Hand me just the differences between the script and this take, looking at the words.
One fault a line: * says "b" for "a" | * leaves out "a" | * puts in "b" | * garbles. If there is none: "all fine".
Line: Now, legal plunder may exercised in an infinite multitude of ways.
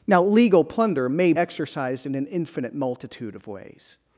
all fine